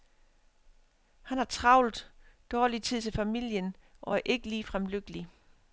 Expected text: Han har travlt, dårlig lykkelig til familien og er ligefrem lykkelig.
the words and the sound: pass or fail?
fail